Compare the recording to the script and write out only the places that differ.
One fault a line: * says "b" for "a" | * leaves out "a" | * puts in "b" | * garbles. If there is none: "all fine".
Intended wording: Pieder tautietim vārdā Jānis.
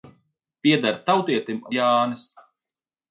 * leaves out "vārdā"